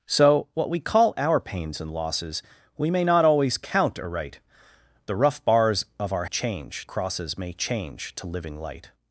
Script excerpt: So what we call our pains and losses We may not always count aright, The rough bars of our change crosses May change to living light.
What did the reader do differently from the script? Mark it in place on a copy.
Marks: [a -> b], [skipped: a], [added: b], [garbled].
So what we call our pains and losses We may not always count aright, The rough bars of our change crosses May change to living light.